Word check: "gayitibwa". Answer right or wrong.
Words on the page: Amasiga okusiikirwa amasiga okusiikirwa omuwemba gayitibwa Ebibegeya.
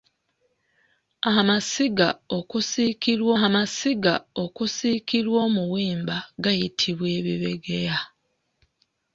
right